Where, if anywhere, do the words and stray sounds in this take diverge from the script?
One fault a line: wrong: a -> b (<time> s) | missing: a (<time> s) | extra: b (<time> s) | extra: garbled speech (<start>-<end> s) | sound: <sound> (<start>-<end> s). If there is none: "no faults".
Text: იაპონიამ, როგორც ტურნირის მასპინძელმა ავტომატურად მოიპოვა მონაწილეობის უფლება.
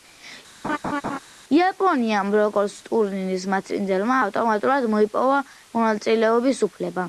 sound: laugh (0.6-1.2 s)